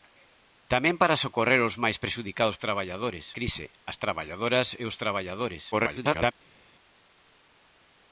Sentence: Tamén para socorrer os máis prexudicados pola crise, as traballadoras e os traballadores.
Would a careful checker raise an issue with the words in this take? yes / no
yes